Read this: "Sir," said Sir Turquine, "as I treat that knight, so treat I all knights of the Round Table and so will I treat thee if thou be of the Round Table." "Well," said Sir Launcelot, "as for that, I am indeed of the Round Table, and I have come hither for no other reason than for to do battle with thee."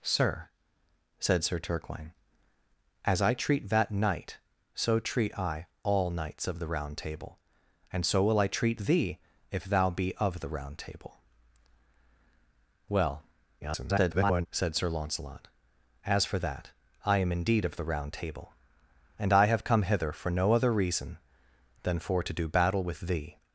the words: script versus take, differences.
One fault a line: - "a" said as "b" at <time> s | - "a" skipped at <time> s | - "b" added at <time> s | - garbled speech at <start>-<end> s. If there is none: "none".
- garbled speech at 13.6-14.5 s